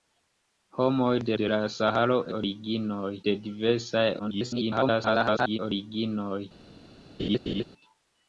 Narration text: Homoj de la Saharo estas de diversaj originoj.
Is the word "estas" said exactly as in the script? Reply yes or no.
no